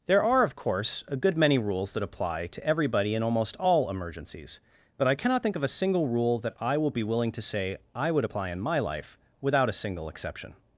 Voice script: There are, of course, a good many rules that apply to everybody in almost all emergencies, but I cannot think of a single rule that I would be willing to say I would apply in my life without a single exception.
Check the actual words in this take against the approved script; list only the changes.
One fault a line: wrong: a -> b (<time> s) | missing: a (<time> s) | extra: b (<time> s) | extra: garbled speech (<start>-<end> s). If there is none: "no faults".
wrong: would -> will (6.8 s)